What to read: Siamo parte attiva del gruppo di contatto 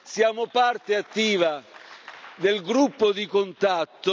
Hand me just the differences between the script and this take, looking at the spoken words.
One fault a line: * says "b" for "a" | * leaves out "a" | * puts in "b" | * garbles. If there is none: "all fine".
all fine